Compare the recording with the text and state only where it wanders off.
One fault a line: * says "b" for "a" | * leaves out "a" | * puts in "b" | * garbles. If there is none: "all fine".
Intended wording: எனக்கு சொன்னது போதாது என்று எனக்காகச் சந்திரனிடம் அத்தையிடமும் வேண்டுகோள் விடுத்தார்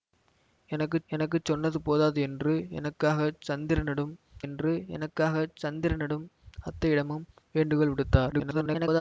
* puts in "எனக்கு"
* puts in "என்று எனக்காகச் சந்திரனிடம்"
* garbles